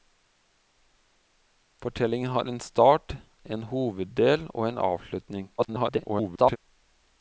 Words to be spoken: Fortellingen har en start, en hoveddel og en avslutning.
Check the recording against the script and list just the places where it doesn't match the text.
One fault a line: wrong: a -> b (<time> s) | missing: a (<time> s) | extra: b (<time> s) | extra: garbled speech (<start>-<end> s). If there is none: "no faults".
extra: garbled speech (5.6-6.6 s)